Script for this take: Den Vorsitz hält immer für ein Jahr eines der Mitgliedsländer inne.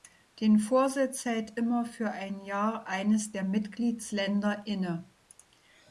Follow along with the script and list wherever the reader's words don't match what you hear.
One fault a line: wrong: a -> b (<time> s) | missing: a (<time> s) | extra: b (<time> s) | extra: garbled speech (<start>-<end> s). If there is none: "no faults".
no faults